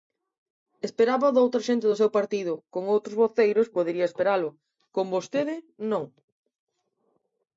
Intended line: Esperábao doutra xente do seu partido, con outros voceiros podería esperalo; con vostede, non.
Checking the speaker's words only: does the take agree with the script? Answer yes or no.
yes